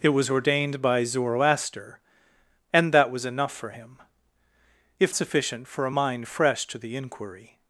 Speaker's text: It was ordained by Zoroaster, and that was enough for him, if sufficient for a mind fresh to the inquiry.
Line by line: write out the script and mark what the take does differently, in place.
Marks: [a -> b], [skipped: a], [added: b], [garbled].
It was ordained by Zoroaster, and that was enough for him, if sufficient for a mind fresh to the inquiry.